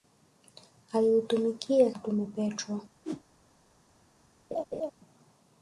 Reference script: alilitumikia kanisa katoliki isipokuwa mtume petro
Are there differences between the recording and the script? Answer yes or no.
yes